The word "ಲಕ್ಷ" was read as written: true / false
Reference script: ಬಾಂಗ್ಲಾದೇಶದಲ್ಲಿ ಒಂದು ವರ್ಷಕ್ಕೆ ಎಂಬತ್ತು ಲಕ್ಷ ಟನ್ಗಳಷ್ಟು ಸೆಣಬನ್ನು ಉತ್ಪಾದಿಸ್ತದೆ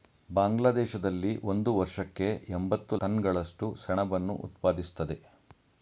false